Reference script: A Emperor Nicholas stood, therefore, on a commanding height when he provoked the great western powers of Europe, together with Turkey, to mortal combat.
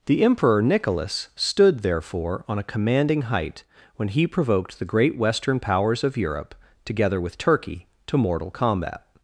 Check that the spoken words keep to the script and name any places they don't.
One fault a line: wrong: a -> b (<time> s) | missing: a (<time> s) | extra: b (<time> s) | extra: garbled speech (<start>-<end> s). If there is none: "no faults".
wrong: A -> The (0.1 s)